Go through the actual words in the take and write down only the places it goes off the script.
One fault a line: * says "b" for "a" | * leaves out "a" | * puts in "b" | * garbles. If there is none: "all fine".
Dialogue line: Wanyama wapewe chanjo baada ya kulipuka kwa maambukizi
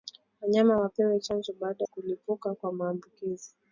* leaves out "ya"